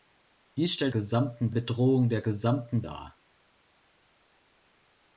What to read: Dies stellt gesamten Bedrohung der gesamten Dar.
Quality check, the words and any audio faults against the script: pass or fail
pass